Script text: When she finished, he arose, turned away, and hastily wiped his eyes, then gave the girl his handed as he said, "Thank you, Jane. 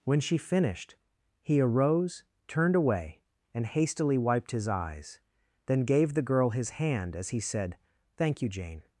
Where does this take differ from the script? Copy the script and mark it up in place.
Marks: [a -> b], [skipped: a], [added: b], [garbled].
When she finished, he arose, turned away, and hastily wiped his eyes, then gave the girl his [handed -> hand] as he said, "Thank you, Jane.